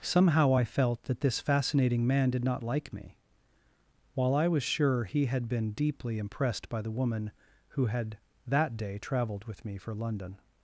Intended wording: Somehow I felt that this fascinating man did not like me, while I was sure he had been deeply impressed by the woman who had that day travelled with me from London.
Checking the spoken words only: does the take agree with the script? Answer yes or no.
no